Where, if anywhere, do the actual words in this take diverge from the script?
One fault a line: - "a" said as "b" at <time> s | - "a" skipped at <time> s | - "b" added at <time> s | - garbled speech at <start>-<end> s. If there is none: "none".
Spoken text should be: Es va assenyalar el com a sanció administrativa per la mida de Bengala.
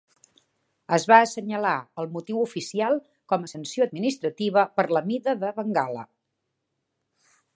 - "motiu oficial" added at 2.1 s